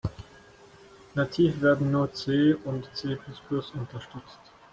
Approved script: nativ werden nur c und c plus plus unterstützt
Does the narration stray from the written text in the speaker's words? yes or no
no